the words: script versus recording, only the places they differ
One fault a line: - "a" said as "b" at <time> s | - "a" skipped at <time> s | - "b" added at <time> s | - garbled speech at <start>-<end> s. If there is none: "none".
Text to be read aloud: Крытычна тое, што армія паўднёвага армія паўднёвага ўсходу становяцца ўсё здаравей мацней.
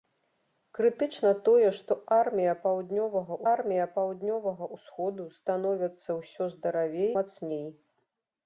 none